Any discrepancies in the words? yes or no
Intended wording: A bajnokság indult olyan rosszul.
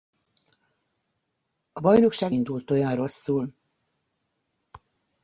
no